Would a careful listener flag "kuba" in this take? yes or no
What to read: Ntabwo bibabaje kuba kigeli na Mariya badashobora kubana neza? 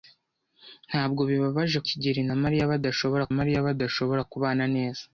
yes